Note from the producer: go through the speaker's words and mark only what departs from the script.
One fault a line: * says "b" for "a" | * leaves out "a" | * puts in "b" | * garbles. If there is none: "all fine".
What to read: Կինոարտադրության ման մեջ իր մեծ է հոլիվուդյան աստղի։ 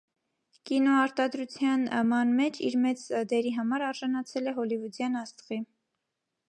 * puts in "դերի համար արժանացել"